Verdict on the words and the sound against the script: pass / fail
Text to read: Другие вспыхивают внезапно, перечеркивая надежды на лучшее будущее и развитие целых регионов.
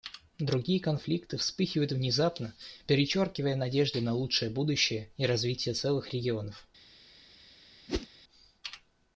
fail